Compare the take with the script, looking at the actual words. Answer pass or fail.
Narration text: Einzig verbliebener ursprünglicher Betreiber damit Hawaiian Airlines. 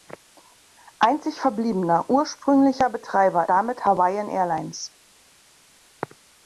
pass